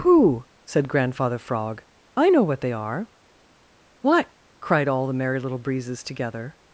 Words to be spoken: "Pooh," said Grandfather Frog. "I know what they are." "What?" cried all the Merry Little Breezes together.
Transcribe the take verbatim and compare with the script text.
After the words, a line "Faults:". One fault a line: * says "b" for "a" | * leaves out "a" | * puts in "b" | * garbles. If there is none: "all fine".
"Pooh," said Grandfather Frog. "I know what they are." "What?" cried all the Merry Little Breezes together.
Faults:
all fine